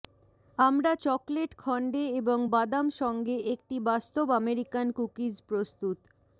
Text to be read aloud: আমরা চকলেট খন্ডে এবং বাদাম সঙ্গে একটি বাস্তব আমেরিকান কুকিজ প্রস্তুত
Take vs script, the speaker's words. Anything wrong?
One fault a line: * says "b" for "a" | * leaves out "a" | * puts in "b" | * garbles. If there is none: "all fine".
all fine